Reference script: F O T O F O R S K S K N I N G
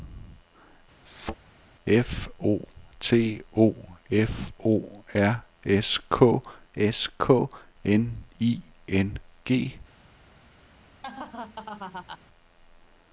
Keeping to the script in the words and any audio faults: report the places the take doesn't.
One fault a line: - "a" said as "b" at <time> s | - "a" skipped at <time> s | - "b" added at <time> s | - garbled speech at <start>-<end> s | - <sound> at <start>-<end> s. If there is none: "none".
- thud at 1.1-1.4 s
- laugh at 11.0-12.2 s